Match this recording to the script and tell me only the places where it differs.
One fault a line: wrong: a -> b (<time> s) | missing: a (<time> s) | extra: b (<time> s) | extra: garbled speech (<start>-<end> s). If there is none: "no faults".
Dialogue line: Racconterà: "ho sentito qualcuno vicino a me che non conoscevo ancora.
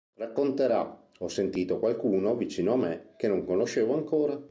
no faults